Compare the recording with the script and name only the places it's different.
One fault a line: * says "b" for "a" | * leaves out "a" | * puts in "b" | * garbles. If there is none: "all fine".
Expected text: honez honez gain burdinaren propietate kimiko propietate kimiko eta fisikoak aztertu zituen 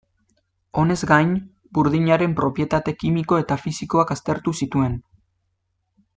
* leaves out "honez"
* leaves out "propietate kimiko"